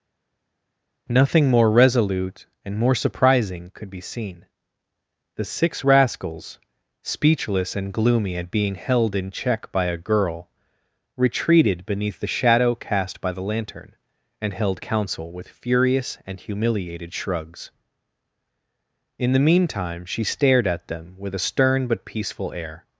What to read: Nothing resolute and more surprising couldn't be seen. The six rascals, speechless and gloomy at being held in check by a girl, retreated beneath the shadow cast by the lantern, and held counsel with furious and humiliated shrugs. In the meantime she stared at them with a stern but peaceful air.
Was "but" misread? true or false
false